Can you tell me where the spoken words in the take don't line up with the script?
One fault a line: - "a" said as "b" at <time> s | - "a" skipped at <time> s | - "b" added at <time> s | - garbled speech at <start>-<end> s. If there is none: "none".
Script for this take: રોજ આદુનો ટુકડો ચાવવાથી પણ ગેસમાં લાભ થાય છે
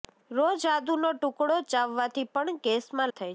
- "લાભ" skipped at 3.1 s